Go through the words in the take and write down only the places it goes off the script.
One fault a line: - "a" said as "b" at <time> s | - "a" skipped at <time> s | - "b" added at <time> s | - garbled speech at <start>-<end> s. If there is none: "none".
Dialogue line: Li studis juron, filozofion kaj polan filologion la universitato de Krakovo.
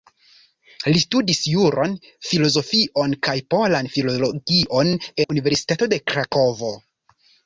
none